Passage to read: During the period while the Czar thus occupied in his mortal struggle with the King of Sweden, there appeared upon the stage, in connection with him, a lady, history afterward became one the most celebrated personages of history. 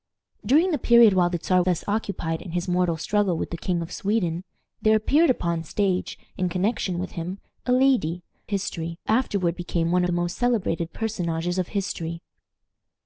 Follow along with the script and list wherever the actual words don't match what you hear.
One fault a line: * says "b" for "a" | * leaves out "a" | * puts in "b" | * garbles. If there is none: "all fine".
all fine